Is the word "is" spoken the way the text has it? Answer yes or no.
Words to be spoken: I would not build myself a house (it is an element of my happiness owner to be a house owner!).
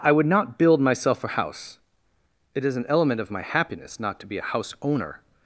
yes